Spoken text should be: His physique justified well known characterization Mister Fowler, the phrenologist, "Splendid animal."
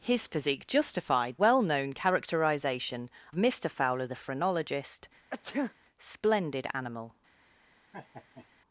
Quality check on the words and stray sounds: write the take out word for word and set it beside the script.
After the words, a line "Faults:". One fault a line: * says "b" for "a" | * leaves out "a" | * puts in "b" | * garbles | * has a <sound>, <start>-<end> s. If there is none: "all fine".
His physique justified well known characterization Mister Fowler, the phrenologist, "Splendid animal."
Faults:
* has a sneeze, 5.3-5.7 s
* has a laugh, 7.9-8.5 s